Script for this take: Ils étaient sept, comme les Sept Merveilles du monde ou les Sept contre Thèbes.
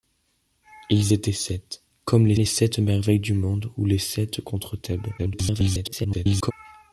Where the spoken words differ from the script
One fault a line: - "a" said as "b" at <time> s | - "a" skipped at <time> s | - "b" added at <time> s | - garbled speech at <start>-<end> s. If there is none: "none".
- "les" added at 2.3 s
- garbled speech at 5.2-6.5 s